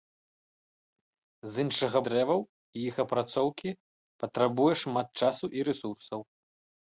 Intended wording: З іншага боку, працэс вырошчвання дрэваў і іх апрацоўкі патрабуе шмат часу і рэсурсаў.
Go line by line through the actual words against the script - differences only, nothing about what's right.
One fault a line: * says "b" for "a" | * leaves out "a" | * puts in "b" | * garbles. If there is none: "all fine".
* leaves out "боку працэс вырошчвання"